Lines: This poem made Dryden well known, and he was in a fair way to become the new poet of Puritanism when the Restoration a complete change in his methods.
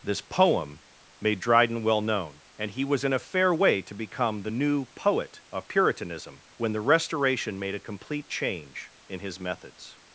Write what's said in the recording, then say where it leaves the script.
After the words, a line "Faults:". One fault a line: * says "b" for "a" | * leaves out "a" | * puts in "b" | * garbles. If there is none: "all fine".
This poem made Dryden well known, and he was in a fair way to become the new poet of Puritanism when the Restoration made a complete change in his methods.
Faults:
* puts in "made"